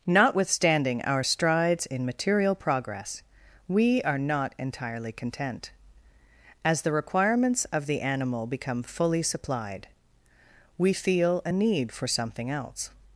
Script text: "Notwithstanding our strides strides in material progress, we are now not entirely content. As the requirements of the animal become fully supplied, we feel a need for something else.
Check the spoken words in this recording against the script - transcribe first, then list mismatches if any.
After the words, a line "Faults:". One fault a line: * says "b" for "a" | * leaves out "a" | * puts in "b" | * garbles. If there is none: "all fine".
"Notwithstanding our strides in material progress, we are not entirely content. As the requirements of the animal become fully supplied, we feel a need for something else.
Faults:
* leaves out "strides"
* leaves out "now"